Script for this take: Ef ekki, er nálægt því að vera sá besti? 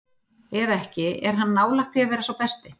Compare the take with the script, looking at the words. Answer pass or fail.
fail